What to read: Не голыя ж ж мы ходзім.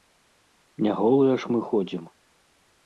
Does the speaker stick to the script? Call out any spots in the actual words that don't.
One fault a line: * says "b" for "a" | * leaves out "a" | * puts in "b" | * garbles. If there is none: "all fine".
* leaves out "ж"